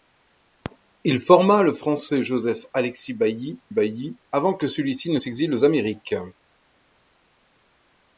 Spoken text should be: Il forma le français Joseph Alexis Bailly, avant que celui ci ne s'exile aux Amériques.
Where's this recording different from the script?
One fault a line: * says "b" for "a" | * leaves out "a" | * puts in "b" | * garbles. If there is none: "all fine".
* puts in "Bailly"